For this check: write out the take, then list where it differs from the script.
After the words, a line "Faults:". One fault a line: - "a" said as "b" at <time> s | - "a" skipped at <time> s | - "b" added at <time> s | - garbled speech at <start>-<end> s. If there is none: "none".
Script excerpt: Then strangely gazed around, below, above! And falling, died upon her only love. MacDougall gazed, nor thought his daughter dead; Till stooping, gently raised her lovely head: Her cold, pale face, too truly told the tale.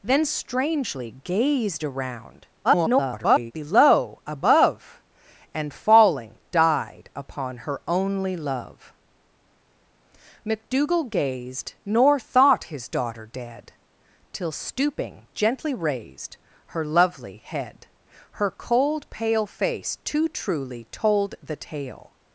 Then strangely gazed around, [garbled] below, above! And falling, died upon her only love. MacDougall gazed, nor thought his daughter dead; Till stooping, gently raised her lovely head: Her cold, pale face, too truly told the tale.
Faults:
- garbled speech at 2.6-3.5 s